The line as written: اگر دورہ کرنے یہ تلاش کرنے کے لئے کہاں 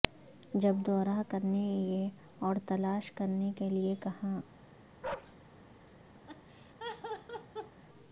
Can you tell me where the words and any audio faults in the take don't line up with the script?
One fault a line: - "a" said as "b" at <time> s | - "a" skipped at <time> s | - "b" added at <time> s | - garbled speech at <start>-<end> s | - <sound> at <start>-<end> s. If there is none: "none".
- "اگر" said as "جب" at 0.5 s
- "اور" added at 2.4 s
- bark at 5.0-5.4 s
- laugh at 6.3-7.8 s